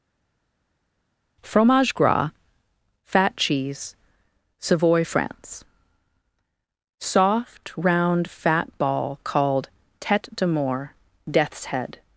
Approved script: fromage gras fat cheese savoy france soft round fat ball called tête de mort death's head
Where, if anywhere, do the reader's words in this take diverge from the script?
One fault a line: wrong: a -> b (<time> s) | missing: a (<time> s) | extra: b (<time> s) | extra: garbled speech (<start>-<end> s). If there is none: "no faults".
no faults